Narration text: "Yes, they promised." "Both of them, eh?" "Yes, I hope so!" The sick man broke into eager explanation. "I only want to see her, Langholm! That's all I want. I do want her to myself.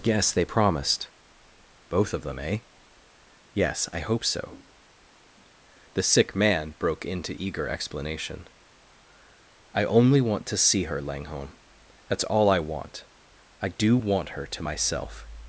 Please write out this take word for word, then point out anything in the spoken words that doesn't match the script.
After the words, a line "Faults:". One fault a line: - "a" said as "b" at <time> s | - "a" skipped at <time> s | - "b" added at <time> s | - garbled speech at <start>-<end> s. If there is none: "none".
"Yes, they promised." "Both of them, eh?" "Yes, I hope so!" The sick man broke into eager explanation. "I only want to see her, Langholm! That's all I want. I do want her to myself.
Faults:
none